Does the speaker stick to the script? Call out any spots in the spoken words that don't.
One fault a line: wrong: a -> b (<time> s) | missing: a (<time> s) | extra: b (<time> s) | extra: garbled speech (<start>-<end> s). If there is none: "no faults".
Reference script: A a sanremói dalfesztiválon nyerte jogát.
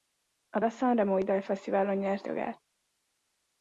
no faults